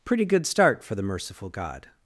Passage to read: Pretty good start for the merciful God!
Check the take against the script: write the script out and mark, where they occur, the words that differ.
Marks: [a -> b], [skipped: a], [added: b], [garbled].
Pretty good start for the merciful God!